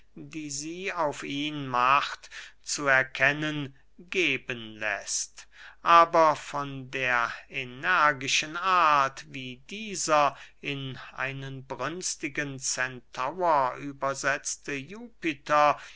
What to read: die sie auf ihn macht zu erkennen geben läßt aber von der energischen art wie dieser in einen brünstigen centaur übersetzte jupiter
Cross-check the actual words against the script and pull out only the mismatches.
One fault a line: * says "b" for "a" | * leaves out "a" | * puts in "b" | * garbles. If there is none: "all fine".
all fine